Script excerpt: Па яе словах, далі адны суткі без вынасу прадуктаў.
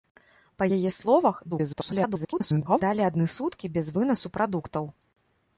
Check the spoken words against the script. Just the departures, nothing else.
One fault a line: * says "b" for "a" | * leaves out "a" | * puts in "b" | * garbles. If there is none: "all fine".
* garbles